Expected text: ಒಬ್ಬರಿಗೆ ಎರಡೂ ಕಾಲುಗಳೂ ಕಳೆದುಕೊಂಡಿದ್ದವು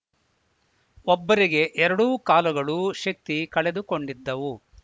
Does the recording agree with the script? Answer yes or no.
no